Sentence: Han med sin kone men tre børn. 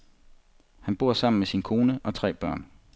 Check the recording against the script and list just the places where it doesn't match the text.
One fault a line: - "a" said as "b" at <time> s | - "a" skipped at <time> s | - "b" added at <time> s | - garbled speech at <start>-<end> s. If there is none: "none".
- "bor sammen" added at 0.9 s
- "men" said as "og" at 2.0 s